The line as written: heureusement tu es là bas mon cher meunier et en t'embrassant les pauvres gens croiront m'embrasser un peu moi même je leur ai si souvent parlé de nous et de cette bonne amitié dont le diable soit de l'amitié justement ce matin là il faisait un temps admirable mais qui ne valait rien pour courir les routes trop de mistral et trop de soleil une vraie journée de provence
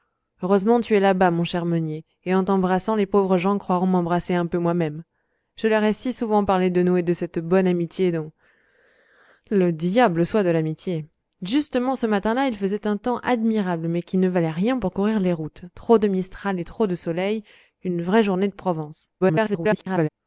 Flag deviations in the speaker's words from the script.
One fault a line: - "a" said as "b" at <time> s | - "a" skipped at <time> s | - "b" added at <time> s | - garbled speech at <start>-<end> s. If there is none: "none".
- garbled speech at 19.2-20.1 s